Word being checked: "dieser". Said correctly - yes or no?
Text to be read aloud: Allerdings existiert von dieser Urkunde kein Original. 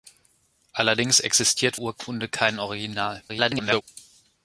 no